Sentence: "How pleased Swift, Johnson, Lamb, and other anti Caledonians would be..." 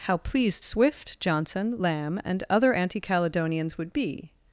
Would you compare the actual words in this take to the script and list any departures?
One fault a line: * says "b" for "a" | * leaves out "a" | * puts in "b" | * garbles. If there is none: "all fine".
all fine